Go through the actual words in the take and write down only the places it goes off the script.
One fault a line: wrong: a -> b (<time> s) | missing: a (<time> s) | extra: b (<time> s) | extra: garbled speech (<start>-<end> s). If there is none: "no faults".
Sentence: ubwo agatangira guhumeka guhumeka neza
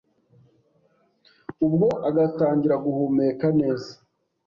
missing: guhumeka (3.5 s)